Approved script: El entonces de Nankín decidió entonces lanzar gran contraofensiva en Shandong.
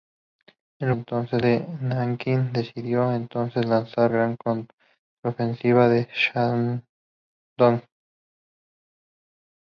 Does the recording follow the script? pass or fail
pass